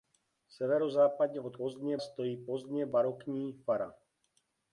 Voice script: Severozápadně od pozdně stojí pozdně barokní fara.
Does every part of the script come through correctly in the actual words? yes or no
yes